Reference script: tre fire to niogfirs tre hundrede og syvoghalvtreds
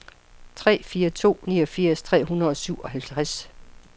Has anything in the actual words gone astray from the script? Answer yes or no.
no